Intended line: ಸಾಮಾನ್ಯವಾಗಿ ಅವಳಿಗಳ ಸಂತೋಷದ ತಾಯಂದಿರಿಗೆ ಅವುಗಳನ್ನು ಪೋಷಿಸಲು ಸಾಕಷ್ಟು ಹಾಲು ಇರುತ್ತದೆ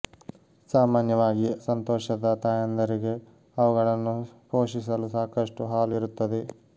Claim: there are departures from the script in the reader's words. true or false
true